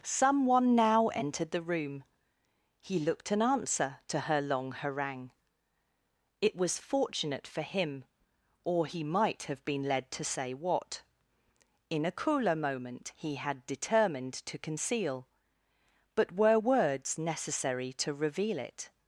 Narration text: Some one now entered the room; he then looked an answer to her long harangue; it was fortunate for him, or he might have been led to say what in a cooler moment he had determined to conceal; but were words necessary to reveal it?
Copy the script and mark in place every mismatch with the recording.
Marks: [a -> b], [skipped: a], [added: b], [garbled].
Some one now entered the room; he [skipped: then] looked an answer to her long harangue; it was fortunate for him, or he might have been led to say what in a cooler moment he had determined to conceal; but were words necessary to reveal it?